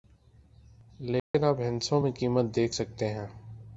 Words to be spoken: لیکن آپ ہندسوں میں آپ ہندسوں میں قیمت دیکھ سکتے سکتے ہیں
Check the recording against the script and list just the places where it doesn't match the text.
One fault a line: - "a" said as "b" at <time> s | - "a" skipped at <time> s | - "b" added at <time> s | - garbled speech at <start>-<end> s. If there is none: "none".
- "آپ ہندسوں میں" skipped at 2.1 s
- "سکتے" skipped at 3.1 s